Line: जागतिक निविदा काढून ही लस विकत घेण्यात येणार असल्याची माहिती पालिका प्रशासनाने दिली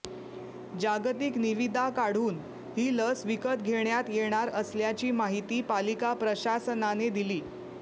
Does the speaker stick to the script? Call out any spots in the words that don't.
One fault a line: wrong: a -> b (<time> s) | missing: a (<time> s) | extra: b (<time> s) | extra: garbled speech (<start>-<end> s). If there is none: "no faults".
no faults